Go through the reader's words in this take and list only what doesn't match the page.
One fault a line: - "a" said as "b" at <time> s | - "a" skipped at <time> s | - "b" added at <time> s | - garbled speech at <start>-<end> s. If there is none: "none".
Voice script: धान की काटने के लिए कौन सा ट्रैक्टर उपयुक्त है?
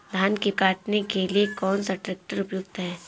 none